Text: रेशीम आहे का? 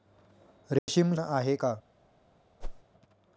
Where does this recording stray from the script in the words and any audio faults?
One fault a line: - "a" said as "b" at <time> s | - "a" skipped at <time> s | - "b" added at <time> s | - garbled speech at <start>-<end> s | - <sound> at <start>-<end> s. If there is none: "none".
- dropout at 0.8-0.9 s
- whoosh at 2.6-2.8 s